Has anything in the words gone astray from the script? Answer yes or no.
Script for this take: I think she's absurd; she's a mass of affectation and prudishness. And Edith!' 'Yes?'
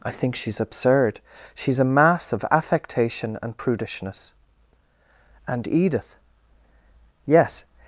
no